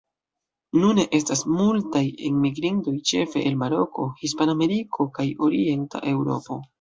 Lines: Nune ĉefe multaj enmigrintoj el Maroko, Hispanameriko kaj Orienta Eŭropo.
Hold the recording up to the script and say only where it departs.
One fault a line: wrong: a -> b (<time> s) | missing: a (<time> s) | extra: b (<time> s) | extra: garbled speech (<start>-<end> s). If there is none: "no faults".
wrong: ĉefe -> estas (1.2 s)
extra: ĉefe (3.1 s)